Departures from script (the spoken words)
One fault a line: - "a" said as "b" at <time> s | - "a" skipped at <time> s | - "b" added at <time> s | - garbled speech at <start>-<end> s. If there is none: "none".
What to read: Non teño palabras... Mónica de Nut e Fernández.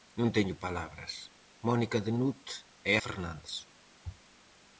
none